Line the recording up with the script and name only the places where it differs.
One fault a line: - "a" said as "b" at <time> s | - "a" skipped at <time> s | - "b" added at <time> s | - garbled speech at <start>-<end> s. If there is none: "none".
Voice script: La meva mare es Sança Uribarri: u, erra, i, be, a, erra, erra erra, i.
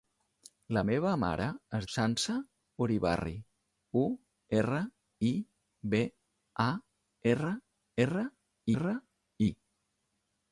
none